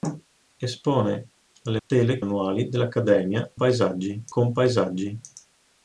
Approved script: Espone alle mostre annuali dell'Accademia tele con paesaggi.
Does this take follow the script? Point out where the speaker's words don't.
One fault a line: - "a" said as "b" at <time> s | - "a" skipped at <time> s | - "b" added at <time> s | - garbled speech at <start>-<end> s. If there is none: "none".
- "mostre" said as "tele" at 1.9 s
- "tele" said as "paesaggi" at 3.5 s